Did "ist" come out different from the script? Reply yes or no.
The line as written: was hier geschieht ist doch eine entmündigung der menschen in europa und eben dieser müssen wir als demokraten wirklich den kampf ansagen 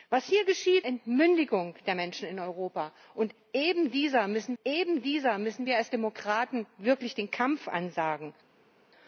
yes